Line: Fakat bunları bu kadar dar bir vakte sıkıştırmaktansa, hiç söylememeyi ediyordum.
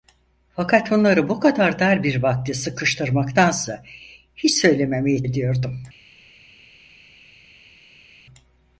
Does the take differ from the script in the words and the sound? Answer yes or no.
no